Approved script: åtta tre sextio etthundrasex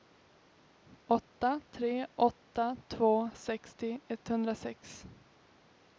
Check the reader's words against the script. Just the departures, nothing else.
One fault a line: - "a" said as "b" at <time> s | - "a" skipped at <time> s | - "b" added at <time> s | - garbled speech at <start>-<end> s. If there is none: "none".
- "åtta två" added at 2.2 s